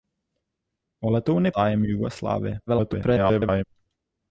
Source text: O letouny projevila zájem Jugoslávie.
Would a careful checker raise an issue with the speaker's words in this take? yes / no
yes